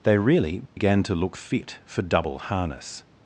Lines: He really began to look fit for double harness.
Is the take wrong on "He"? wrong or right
wrong